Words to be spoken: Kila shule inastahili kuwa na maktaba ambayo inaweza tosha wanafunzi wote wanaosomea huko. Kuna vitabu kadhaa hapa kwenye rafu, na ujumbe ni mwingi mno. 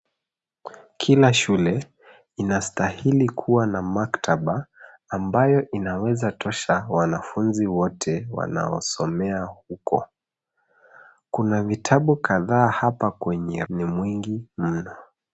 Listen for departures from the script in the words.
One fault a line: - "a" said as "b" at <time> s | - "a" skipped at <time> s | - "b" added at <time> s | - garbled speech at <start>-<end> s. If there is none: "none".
- "rafu na ujumbe" skipped at 13.7 s